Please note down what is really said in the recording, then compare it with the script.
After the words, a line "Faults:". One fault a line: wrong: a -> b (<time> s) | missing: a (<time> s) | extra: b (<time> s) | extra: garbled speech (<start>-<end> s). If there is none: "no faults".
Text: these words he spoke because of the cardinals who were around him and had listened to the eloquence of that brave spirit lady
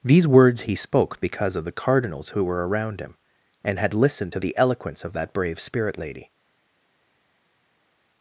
these words he spoke because of the cardinals who were around him and had listened to the eloquence of that brave spirit lady
Faults:
no faults